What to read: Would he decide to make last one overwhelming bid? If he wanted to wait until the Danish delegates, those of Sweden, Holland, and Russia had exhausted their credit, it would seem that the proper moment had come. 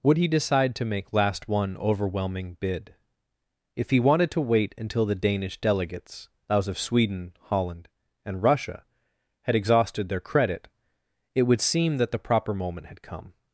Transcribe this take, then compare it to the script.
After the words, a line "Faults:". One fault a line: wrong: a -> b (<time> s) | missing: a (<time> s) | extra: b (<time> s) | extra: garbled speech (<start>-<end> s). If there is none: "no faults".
Would he decide to make last one overwhelming bid? If he wanted to wait until the Danish delegates, those of Sweden, Holland, and Russia had exhausted their credit, it would seem that the proper moment had come.
Faults:
no faults